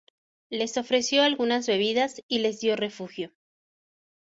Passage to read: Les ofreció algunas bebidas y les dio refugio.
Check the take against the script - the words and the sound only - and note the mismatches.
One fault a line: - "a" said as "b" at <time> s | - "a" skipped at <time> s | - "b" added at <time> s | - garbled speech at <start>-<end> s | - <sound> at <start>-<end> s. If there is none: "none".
none